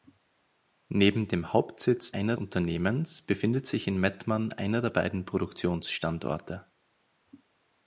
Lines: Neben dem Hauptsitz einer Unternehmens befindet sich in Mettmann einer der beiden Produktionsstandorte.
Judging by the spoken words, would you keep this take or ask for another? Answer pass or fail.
pass